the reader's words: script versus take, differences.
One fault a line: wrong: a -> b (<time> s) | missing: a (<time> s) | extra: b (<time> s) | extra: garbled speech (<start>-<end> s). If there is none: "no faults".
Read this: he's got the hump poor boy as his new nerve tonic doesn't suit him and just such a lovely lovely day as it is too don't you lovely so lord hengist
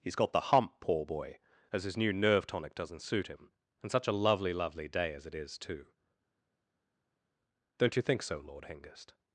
missing: just (3.9 s)
wrong: lovely -> think (8.0 s)